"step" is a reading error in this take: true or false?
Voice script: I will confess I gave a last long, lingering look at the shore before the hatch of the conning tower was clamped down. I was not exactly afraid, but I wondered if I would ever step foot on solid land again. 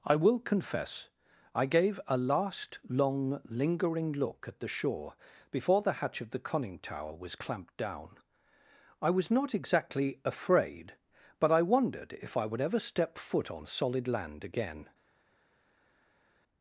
false